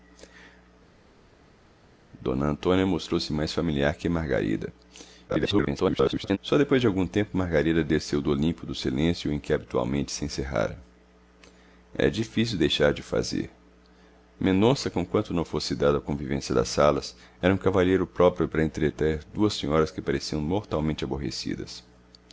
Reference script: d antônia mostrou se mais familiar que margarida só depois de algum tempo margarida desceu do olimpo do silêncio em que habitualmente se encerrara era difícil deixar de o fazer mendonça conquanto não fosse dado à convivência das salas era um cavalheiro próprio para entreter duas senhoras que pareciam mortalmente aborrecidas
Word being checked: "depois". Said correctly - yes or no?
yes